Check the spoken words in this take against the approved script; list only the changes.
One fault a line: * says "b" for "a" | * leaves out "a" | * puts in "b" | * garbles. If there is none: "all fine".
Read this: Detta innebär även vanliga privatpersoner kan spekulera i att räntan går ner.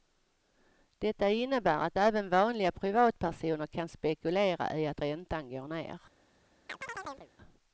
* puts in "att"